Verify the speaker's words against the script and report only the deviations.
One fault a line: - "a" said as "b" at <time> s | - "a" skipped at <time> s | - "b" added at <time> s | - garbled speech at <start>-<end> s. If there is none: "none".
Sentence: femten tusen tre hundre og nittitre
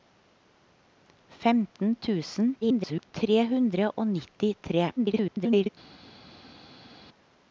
- garbled speech at 2.6-3.1 s
- garbled speech at 5.0-5.7 s